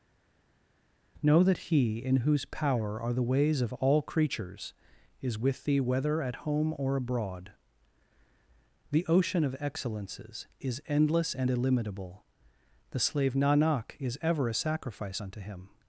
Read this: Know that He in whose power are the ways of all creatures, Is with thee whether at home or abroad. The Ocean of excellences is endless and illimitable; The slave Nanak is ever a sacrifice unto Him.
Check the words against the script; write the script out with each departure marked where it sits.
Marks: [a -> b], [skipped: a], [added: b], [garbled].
Know that He in whose power are the ways of all creatures, Is with thee whether at home or abroad. The Ocean of excellences is endless and illimitable; The slave Nanak is ever a sacrifice unto Him.